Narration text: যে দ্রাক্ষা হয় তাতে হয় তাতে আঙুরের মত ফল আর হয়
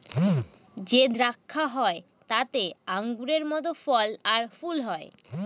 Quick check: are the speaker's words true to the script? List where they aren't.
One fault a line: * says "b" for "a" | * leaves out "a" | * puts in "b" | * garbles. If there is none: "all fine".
* leaves out "হয় তাতে"
* puts in "ফুল"